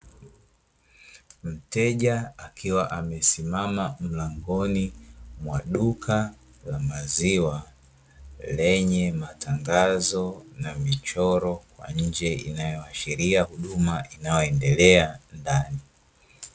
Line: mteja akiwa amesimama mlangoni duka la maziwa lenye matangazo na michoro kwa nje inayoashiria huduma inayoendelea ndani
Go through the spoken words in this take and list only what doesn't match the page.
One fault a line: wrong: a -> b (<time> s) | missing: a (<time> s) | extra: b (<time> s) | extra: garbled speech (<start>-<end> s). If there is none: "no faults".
extra: mwa (5.4 s)